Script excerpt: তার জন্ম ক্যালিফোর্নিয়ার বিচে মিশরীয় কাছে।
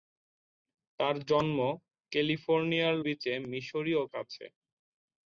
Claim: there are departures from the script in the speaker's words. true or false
false